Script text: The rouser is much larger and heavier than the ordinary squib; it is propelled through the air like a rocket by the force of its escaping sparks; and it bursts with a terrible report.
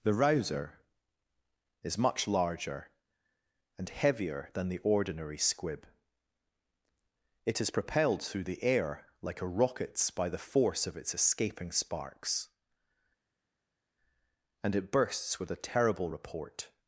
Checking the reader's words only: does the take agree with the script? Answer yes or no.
no